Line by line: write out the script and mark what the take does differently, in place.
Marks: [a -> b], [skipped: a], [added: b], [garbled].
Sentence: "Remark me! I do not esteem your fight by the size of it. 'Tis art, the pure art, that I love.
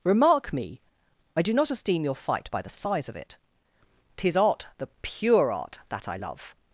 "Remark me! I do not esteem your fight by the size of it. 'Tis art, the pure art, that I love.